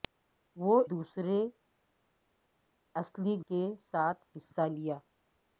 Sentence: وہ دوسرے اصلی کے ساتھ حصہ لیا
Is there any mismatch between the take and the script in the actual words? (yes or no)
no